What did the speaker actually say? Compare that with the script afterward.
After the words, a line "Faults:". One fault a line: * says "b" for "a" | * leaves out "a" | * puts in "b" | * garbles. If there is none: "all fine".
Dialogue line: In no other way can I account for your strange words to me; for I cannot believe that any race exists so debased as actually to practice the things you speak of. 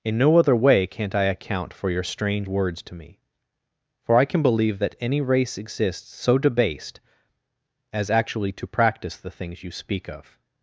In no other way can't I account for your strange words to me; for I can believe that any race exists so debased as actually to practice the things you speak of.
Faults:
* says "can't" for "can"
* says "can" for "cannot"